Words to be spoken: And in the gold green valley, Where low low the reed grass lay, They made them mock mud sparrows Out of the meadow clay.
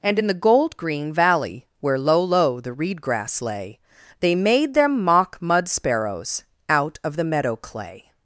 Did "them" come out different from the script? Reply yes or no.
no